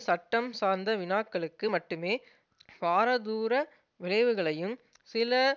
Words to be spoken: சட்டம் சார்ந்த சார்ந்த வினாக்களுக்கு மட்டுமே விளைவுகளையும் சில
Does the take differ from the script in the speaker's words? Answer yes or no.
yes